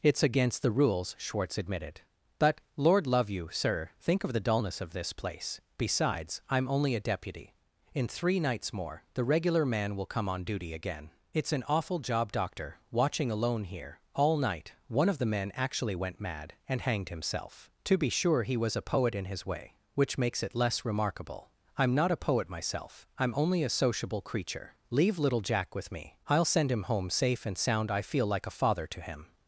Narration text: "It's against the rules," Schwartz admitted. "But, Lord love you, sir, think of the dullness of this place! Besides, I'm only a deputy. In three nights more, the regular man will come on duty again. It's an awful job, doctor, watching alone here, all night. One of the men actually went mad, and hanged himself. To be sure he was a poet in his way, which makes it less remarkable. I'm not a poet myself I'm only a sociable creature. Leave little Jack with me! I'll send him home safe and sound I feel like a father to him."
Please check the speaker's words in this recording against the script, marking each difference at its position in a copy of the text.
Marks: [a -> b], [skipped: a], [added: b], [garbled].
"It's against the rules," Schwartz admitted. "But, Lord love you, sir, think of the dullness of this place! Besides, I'm only a deputy. In three nights more, the regular man will come on duty again. It's an awful job, doctor, watching alone here, all night. One of the men actually went mad, and hanged himself. To be sure he was a poet in his way, which makes it less remarkable. I'm not a poet myself I'm only a sociable creature. Leave little Jack with me! I'll send him home safe and sound I feel like a father to him."